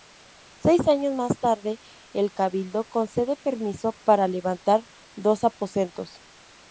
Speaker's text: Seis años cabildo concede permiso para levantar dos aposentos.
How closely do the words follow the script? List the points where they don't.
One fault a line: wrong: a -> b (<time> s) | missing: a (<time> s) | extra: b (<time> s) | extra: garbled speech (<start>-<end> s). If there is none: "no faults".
extra: más tarde el (1.1 s)